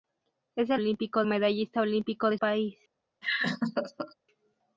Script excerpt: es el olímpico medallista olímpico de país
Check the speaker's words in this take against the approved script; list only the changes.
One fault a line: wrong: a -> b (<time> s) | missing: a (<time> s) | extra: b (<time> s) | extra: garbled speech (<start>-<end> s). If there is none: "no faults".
no faults